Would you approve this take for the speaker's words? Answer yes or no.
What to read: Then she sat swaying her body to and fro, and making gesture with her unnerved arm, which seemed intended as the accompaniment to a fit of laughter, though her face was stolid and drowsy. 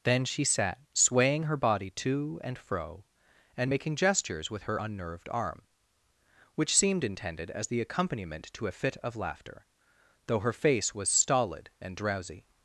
no